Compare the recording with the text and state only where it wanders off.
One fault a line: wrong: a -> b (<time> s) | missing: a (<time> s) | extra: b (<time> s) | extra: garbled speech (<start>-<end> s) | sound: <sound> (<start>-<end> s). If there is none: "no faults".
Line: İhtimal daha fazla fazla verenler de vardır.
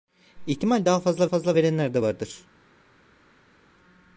no faults